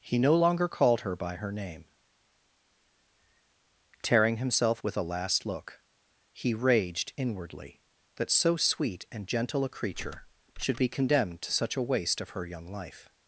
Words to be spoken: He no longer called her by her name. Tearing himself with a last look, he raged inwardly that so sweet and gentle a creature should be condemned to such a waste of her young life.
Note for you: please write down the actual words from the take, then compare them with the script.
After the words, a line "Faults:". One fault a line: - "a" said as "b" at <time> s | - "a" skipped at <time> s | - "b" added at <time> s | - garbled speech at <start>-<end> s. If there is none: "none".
He no longer called her by her name. Tearing himself with a last look, he raged inwardly that so sweet and gentle a creature should be condemned to such a waste of her young life.
Faults:
none